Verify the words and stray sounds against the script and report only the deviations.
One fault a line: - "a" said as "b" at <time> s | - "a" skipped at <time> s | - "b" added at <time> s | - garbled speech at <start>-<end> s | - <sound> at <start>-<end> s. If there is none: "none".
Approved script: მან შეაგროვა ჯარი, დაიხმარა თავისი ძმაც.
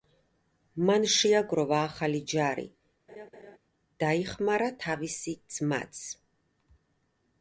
- "ახალი" added at 1.9 s
- laugh at 3.1-3.6 s